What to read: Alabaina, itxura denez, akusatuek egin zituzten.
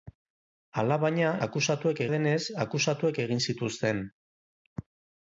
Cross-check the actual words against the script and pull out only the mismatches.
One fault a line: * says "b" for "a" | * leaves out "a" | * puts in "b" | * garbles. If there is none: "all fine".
* says "akusatuek" for "itxura"